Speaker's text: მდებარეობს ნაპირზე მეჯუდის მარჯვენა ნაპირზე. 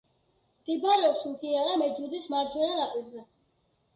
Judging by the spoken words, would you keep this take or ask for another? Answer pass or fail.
fail